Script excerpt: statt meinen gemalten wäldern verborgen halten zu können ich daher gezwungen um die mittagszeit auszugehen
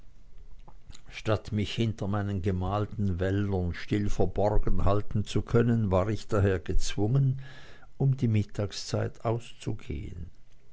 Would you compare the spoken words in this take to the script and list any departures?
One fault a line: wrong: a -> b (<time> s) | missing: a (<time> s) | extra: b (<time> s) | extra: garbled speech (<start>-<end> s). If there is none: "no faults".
extra: mich hinter (1.5 s)
extra: still (3.8 s)
extra: war (5.9 s)